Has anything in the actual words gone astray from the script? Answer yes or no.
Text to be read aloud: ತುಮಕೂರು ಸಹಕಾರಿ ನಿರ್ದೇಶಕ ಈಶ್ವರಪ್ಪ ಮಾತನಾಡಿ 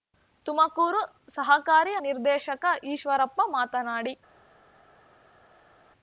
no